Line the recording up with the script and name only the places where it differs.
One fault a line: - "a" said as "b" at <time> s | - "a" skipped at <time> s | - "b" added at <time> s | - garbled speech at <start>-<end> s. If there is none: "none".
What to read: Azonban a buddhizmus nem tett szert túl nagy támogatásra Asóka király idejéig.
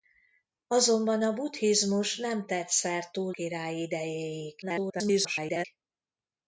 - "nagy támogatásra Asóka" skipped at 3.3 s
- garbled speech at 4.6-5.6 s